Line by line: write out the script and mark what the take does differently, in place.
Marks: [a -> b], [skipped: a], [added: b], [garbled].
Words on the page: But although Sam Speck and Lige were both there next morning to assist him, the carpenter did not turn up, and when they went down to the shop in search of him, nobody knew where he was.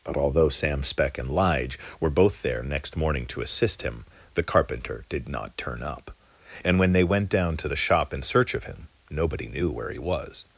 But although Sam Speck and Lige were both there next morning to assist him, the carpenter did not turn up, and when they went down to the shop in search of him, nobody knew where he was.